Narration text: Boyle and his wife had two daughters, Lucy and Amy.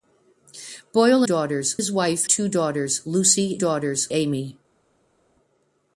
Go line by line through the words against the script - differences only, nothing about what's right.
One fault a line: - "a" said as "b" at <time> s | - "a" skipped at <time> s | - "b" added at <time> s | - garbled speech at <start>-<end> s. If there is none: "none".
- "and" said as "daughters" at 1.2 s
- "had" skipped at 2.3 s
- "and" said as "daughters" at 3.6 s